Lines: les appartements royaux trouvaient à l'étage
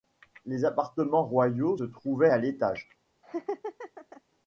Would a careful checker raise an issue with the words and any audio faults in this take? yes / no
yes